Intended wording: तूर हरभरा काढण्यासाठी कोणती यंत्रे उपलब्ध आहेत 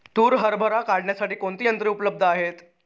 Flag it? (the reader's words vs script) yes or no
no